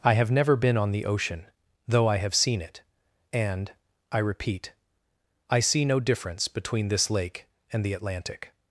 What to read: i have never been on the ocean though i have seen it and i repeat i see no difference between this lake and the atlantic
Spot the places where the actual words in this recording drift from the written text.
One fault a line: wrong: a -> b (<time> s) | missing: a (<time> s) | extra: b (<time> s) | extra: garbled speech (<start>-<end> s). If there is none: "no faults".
no faults